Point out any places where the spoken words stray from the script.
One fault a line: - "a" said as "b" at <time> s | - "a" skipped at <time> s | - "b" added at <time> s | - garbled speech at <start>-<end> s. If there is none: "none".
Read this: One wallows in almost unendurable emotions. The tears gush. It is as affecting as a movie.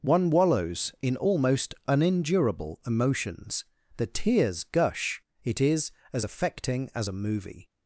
none